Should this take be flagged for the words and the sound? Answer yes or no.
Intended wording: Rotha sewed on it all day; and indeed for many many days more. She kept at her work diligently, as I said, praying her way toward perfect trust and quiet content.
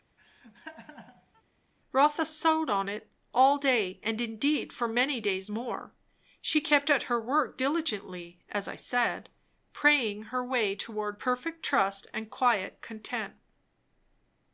yes